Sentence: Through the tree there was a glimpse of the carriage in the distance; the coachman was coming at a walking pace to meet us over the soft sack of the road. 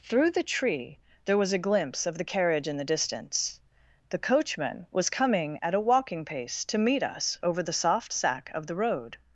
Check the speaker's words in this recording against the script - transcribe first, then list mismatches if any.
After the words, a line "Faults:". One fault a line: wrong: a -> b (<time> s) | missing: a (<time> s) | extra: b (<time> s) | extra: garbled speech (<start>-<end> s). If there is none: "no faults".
Through the tree there was a glimpse of the carriage in the distance; the coachman was coming at a walking pace to meet us over the soft sack of the road.
Faults:
no faults